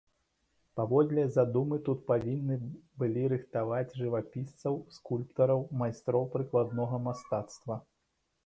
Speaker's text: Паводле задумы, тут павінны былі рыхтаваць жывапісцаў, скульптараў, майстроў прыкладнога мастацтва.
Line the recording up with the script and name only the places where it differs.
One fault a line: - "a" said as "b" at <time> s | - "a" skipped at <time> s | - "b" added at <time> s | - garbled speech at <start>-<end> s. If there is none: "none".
none